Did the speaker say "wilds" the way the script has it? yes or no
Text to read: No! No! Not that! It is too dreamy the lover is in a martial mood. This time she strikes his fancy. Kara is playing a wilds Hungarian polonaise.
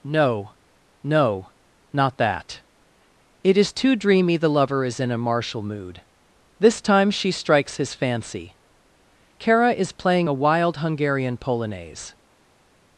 no